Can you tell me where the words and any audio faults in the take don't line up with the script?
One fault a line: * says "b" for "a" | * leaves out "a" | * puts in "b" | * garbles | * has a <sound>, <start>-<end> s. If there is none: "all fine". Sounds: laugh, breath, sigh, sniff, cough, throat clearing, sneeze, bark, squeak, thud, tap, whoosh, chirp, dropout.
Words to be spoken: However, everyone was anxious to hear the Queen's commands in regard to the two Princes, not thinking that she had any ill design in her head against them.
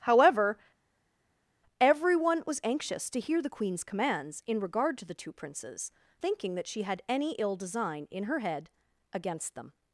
* leaves out "not"